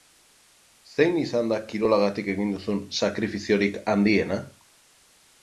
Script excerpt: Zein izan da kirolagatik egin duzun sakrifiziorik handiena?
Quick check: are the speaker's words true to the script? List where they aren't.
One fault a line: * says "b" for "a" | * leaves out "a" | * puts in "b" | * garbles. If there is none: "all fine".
all fine